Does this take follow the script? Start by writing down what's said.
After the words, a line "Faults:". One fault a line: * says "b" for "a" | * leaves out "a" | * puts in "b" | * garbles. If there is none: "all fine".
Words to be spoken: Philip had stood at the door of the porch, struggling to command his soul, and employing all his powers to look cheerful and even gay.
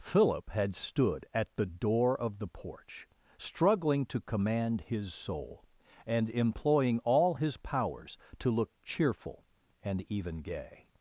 Philip had stood at the door of the porch, struggling to command his soul, and employing all his powers to look cheerful and even gay.
Faults:
all fine